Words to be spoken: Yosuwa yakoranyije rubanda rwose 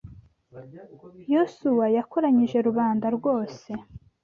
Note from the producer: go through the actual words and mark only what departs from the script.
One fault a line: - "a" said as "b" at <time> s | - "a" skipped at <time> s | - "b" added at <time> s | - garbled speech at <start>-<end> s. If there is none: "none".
none